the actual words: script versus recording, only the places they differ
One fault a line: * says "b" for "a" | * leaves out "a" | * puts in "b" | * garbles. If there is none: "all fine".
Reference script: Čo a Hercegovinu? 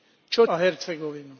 all fine